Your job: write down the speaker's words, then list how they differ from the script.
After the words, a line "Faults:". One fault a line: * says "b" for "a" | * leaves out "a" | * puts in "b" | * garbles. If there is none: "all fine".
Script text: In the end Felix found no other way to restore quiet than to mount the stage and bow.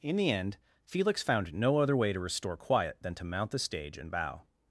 In the end Felix found no other way to restore quiet than to mount the stage and bow.
Faults:
all fine